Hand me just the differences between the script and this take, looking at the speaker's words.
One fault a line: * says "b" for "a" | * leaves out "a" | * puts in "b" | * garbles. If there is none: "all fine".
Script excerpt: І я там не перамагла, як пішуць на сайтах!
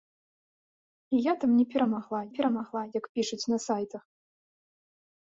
* puts in "перамагла"